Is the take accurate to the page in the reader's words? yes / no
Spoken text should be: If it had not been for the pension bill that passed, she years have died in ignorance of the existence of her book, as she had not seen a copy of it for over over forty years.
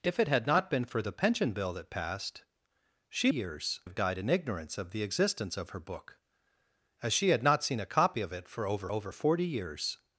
yes